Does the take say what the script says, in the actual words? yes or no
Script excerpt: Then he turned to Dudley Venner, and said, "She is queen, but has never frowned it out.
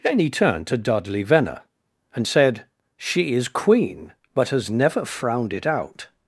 yes